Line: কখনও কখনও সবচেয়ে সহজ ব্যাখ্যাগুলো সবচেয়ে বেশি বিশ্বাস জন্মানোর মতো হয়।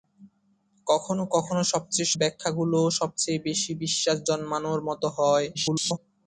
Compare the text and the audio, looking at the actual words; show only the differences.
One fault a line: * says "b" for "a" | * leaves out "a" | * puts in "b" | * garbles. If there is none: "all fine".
* leaves out "সহজ"
* garbles